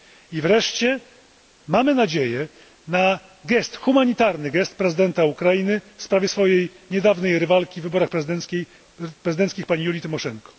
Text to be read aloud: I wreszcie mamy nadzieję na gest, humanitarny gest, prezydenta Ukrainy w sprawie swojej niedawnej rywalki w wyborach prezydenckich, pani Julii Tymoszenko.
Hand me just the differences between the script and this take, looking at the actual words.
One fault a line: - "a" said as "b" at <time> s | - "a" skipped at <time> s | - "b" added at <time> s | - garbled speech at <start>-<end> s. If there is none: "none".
none